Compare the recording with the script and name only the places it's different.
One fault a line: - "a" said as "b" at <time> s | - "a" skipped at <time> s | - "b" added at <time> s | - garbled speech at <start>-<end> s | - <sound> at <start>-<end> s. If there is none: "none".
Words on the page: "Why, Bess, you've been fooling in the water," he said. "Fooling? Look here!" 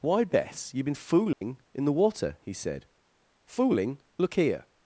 - dropout at 1.3-1.4 s